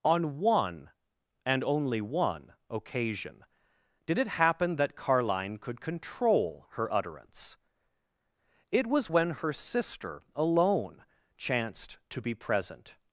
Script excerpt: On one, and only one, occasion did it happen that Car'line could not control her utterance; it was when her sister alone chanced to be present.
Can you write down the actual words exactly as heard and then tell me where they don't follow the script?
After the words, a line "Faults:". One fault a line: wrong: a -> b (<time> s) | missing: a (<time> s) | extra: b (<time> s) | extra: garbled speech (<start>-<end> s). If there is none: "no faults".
On one, and only one, occasion did it happen that Car'line could control her utterance; it was when her sister alone chanced to be present.
Faults:
missing: not (5.8 s)